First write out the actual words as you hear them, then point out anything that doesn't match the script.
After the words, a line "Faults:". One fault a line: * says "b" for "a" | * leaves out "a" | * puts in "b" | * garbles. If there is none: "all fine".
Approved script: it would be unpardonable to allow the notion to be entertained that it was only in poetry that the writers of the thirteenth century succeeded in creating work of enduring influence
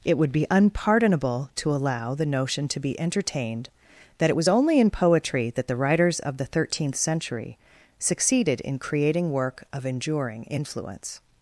it would be unpardonable to allow the notion to be entertained that it was only in poetry that the writers of the thirteenth century succeeded in creating work of enduring influence
Faults:
all fine